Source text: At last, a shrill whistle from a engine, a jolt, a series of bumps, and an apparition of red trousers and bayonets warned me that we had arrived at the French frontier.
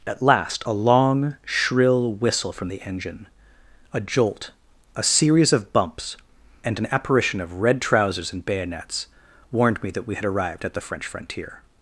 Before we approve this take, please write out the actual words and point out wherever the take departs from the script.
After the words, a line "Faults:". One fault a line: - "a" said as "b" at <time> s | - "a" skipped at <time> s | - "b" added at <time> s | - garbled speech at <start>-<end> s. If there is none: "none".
At last, a long, shrill whistle from the engine, a jolt, a series of bumps, and an apparition of red trousers and bayonets warned me that we had arrived at the French frontier.
Faults:
- "long" added at 0.7 s
- "a" said as "the" at 2.7 s